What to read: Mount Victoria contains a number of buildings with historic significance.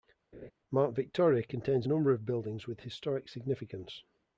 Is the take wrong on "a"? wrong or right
right